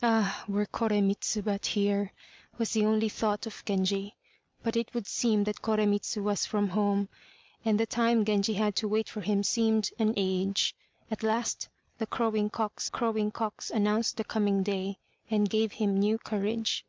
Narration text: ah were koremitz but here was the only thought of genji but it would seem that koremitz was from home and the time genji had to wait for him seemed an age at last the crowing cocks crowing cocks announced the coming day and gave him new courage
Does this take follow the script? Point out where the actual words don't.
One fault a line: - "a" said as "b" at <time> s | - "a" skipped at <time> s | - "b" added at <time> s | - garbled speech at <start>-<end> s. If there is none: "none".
none